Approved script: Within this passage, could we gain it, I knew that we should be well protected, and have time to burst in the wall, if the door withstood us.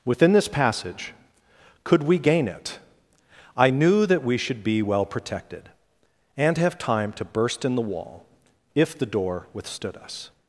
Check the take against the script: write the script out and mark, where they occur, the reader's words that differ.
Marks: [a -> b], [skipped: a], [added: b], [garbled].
Within this passage, could we gain it, I knew that we should be well protected, and have time to burst in the wall, if the door withstood us.